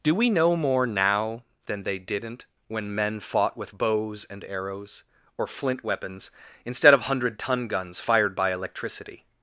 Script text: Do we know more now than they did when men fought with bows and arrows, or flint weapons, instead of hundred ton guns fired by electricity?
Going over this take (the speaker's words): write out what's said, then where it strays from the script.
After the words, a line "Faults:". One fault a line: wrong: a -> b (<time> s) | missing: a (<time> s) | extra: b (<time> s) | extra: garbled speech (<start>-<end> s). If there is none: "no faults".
Do we know more now than they didn't when men fought with bows and arrows, or flint weapons, instead of hundred ton guns fired by electricity?
Faults:
wrong: did -> didn't (2.0 s)